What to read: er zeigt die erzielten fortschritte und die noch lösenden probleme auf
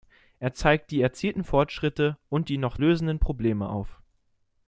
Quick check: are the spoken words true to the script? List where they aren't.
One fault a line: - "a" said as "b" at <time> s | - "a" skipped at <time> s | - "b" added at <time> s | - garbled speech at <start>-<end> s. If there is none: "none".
none